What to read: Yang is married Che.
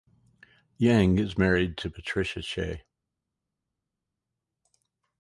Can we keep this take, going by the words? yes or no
no